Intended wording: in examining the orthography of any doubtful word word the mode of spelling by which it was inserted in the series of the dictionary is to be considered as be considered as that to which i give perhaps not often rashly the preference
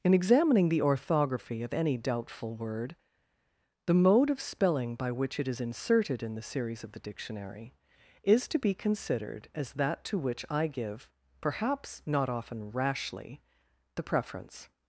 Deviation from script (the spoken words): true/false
true